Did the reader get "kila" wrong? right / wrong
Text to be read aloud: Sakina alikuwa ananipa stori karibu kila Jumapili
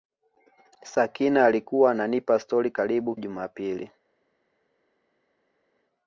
wrong